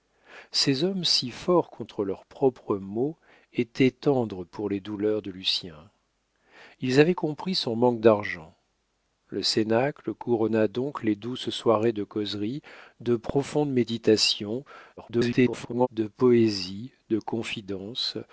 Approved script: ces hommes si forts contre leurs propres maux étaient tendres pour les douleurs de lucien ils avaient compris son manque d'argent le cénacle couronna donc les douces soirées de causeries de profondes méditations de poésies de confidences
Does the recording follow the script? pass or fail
fail